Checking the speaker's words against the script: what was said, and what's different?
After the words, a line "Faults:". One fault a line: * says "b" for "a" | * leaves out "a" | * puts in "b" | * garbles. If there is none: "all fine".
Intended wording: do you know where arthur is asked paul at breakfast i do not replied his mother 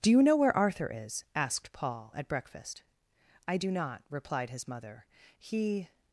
do you know where arthur is asked paul at breakfast i do not replied his mother he
Faults:
* puts in "he"